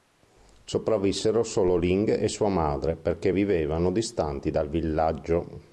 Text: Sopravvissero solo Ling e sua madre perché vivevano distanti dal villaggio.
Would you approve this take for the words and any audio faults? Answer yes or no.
yes